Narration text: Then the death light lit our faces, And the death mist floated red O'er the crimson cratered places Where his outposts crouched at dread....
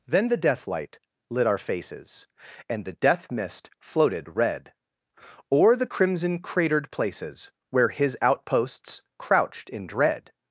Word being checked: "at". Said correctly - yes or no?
no